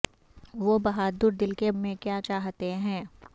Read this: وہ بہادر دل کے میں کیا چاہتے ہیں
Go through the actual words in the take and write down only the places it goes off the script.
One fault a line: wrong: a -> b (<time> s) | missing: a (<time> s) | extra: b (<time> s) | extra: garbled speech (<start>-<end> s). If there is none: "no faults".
no faults